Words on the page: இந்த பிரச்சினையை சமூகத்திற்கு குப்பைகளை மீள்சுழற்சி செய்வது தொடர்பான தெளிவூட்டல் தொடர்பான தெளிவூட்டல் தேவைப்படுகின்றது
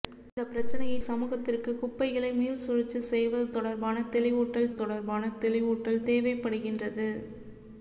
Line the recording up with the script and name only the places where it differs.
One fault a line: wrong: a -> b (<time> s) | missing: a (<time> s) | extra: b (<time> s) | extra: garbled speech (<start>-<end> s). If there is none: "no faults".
no faults